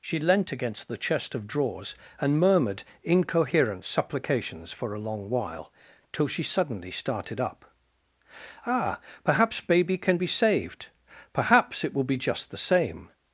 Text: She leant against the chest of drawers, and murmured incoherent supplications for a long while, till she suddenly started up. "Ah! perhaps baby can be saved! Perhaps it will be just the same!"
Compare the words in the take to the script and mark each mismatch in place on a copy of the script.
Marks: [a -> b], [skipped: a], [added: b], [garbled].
She leant against the chest of drawers, and murmured incoherent supplications for a long while, till she suddenly started up. "Ah! perhaps baby can be saved! Perhaps it will be just the same!"